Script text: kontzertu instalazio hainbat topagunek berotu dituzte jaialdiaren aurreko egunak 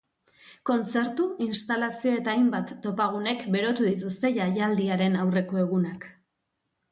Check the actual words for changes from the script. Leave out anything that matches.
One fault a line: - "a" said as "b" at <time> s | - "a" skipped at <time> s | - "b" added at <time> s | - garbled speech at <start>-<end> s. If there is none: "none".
- "eta" added at 2.2 s